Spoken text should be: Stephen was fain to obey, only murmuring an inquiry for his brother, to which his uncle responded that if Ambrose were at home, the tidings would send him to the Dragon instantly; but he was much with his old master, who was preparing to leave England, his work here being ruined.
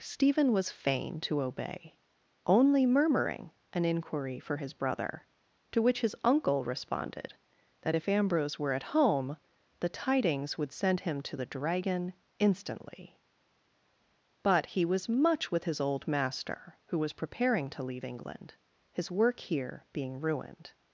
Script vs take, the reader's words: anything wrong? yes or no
no